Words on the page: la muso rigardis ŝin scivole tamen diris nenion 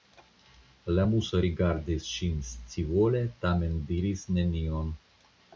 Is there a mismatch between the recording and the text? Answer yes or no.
no